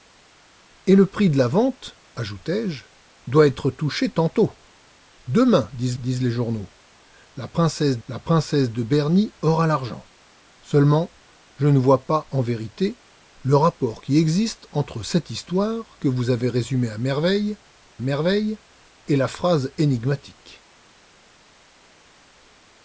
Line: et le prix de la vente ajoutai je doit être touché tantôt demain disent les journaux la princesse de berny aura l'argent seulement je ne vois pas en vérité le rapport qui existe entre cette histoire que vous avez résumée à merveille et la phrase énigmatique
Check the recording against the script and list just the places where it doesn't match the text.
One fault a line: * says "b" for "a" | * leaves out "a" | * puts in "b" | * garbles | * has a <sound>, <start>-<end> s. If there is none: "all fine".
* puts in "disent"
* puts in "la princesse"
* puts in "merveille"